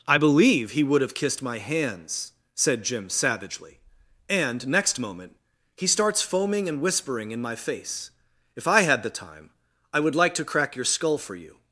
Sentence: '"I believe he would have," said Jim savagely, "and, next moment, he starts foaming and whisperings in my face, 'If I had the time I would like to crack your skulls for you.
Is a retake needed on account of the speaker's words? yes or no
yes